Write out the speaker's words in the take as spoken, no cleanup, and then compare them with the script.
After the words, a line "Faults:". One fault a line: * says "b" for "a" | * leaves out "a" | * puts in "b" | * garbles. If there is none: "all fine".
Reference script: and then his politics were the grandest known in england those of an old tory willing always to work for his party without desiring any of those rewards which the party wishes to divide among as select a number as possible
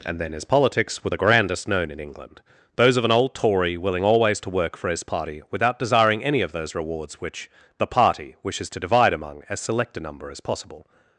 and then his politics were the grandest known in england those of an old tory willing always to work for his party without desiring any of those rewards which the party wishes to divide among as select a number as possible
Faults:
all fine